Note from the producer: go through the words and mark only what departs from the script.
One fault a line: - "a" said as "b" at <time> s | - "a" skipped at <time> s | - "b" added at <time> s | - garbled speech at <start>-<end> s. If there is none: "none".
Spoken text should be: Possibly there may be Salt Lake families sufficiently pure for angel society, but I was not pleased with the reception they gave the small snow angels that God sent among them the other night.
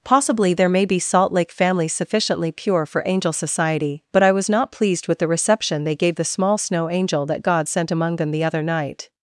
- "angels" said as "angel" at 6.9 s